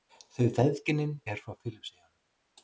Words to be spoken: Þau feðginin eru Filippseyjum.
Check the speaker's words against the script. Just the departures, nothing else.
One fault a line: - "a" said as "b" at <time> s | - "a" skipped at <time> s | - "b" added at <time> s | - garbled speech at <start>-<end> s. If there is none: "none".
- "frá" added at 1.5 s